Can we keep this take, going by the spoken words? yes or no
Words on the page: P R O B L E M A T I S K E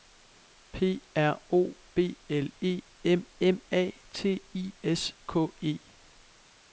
no